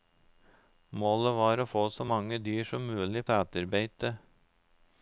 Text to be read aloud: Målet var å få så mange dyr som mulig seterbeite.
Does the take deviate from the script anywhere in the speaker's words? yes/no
no